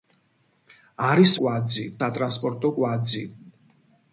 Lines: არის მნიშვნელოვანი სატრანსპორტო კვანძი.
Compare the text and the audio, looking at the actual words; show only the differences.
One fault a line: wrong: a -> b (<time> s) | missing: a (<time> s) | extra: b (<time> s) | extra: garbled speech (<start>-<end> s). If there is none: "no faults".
wrong: მნიშვნელოვანი -> კვანძი (1.4 s)